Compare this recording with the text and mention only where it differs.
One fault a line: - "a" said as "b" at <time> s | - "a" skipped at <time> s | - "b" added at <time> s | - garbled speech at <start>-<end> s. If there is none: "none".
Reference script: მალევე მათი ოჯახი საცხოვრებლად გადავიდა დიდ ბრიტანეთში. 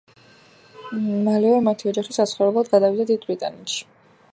none